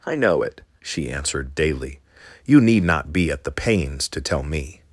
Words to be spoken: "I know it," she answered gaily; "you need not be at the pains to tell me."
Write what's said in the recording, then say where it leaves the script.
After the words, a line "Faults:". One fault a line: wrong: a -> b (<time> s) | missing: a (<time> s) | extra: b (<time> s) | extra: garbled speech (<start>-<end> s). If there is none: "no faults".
"I know it," she answered daily; "you need not be at the pains to tell me."
Faults:
wrong: gaily -> daily (1.5 s)